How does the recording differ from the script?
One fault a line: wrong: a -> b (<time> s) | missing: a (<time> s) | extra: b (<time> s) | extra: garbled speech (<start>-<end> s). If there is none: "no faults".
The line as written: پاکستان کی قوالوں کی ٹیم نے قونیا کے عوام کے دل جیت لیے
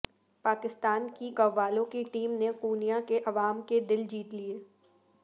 no faults